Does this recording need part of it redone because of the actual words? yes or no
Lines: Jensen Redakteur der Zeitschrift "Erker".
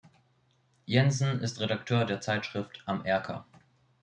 yes